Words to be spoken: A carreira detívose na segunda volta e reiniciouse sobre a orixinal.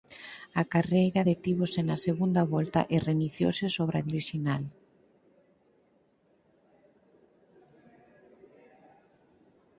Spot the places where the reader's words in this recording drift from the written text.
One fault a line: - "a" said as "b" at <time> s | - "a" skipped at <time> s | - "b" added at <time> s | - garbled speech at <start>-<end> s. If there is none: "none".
none